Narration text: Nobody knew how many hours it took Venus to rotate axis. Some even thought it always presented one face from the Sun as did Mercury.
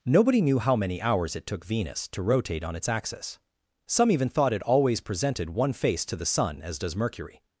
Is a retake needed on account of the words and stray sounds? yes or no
yes